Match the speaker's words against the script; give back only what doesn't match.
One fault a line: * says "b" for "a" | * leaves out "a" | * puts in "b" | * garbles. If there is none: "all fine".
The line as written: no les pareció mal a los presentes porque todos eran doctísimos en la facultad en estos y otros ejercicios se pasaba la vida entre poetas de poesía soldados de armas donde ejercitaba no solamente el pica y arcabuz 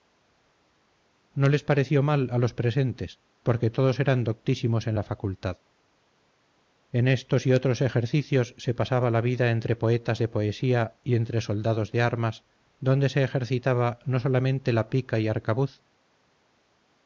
* puts in "y entre"
* puts in "se"
* says "la" for "el"